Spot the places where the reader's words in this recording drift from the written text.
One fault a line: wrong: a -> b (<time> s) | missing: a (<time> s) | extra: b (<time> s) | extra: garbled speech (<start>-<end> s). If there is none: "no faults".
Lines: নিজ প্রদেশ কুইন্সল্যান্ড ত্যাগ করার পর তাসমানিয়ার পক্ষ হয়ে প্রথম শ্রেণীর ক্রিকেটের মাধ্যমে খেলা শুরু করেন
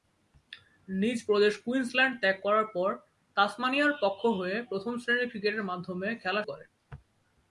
missing: শুরু (6.4 s)